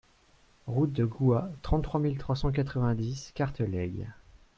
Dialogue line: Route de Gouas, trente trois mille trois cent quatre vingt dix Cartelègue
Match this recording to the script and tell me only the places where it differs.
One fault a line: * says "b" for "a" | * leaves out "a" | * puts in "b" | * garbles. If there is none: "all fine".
all fine